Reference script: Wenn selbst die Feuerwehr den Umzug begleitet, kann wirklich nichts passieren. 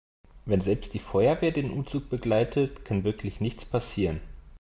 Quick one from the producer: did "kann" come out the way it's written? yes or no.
yes